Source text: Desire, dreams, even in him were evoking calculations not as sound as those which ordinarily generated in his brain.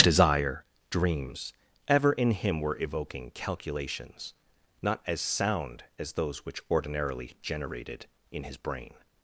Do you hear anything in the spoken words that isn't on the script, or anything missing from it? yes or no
yes